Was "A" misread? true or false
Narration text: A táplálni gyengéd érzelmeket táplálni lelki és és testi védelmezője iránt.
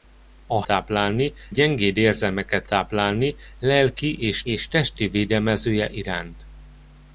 false